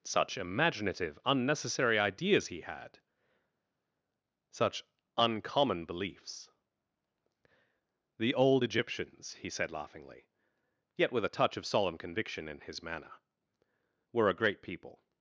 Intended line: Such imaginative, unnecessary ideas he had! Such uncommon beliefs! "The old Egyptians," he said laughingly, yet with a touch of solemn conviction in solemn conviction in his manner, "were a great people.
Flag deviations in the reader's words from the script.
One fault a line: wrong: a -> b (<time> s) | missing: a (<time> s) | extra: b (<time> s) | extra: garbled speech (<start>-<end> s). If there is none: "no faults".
missing: solemn conviction in (12.6 s)